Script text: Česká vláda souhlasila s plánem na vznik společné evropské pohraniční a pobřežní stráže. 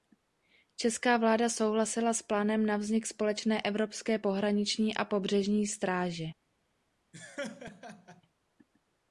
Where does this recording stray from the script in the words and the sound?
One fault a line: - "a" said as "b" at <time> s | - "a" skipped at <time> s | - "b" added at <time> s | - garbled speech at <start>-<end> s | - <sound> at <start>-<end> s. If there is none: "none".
- laugh at 7.1-8.2 s